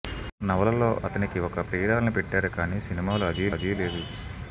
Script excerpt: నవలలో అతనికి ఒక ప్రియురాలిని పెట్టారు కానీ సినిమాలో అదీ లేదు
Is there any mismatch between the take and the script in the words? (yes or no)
yes